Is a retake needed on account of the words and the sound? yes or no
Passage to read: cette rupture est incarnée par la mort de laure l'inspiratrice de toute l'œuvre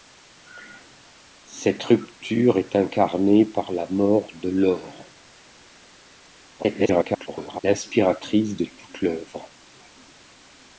yes